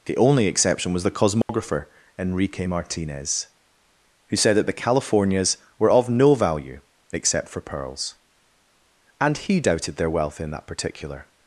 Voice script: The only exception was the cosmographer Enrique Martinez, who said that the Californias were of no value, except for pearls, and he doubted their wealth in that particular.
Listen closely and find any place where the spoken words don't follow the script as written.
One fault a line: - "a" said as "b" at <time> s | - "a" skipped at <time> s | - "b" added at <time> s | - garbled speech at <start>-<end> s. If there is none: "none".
none